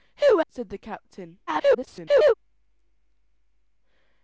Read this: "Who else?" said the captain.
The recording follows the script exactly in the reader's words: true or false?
false